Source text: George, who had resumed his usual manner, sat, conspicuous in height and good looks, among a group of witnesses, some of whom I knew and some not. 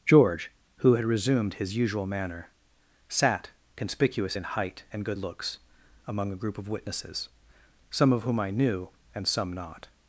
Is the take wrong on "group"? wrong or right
right